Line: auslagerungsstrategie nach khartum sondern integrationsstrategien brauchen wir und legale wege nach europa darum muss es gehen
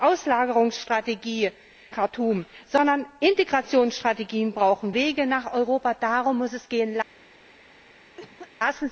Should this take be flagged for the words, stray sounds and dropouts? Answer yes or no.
yes